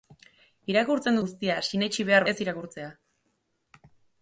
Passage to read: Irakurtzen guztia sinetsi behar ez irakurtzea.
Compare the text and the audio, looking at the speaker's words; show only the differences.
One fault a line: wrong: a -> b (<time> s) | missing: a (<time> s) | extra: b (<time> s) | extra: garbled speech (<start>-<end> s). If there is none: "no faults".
no faults